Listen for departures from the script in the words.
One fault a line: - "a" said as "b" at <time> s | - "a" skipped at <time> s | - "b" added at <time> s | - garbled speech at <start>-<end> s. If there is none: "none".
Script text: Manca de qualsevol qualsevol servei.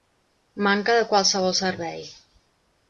- "qualsevol" skipped at 1.5 s